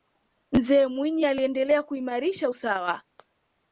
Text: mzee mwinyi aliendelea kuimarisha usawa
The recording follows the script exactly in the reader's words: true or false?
true